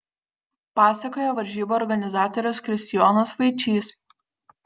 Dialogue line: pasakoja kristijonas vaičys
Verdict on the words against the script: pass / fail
fail